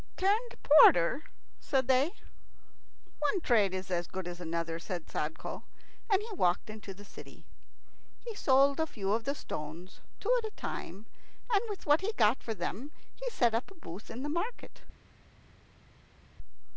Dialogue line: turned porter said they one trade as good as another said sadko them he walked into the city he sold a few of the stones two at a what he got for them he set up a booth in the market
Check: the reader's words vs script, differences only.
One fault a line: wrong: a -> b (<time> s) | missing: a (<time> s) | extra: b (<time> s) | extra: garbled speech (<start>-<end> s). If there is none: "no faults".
extra: is (3.7 s)
wrong: them -> and (6.1 s)
extra: time and with (10.5 s)